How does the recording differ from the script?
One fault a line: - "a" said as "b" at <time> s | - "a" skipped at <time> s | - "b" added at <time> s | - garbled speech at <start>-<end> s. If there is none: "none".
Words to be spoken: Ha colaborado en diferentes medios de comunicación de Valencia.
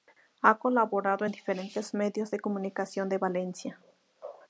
none